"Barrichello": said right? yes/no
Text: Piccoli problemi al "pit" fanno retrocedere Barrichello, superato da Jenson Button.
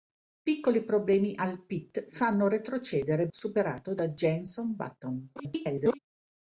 no